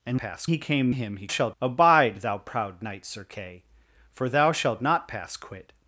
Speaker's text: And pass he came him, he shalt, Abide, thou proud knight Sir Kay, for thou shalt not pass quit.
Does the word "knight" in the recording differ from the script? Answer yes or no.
no